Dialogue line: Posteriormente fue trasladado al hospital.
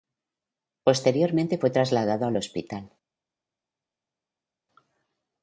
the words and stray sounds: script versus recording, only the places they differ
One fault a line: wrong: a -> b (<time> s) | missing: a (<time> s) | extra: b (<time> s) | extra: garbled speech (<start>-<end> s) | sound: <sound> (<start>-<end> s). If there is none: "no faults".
no faults